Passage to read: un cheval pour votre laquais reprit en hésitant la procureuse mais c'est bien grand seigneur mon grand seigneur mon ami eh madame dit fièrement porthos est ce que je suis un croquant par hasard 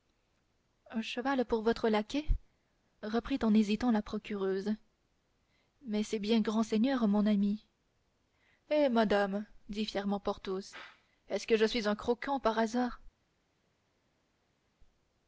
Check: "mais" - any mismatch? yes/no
no